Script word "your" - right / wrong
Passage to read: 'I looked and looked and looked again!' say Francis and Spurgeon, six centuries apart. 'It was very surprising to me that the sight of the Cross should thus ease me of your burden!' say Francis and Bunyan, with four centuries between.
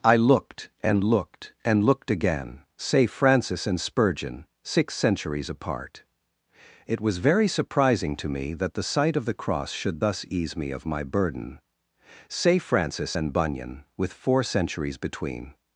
wrong